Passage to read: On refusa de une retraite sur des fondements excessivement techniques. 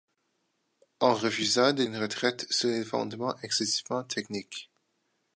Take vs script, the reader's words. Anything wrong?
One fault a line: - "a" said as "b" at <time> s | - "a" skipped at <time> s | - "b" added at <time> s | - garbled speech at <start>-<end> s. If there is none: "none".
none